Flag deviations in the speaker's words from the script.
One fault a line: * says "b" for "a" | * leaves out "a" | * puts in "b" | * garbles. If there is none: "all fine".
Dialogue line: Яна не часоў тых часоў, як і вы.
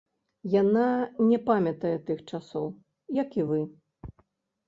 * says "памятае" for "часоў"